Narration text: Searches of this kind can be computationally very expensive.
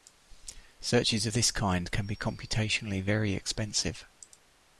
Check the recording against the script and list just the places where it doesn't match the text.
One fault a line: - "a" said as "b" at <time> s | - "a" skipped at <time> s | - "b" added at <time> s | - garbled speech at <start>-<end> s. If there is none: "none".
none